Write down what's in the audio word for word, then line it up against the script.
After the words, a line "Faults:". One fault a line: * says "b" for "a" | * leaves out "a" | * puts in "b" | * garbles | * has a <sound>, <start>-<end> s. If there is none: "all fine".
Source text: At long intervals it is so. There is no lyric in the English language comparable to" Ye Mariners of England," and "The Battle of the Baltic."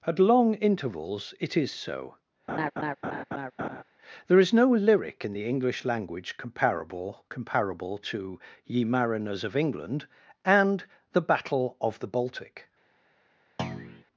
At long intervals it is so. There is no lyric in the English language comparable comparable to" Ye Mariners of England," and "The Battle of the Baltic."
Faults:
* has a laugh, 2.5-3.8 s
* puts in "comparable"
* has a thud, 13.6-14.0 s